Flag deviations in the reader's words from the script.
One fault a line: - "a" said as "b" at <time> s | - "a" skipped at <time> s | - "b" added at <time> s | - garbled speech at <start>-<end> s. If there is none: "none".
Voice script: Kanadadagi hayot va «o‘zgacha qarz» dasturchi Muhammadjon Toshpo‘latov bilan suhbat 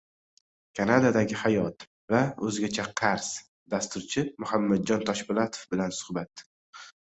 none